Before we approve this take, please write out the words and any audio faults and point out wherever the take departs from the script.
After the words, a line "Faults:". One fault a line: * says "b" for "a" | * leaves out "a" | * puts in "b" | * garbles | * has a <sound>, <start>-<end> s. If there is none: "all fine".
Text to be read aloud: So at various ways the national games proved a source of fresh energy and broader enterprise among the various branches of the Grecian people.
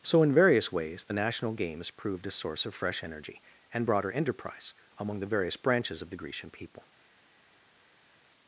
So in various ways the national games proved a source of fresh energy and broader enterprise among the various branches of the Grecian people.
Faults:
* says "in" for "at"